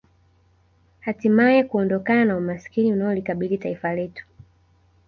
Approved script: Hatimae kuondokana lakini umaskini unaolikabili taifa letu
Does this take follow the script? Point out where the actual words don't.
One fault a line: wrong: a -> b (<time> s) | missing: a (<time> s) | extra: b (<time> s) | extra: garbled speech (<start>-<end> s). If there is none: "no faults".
wrong: lakini -> na (2.2 s)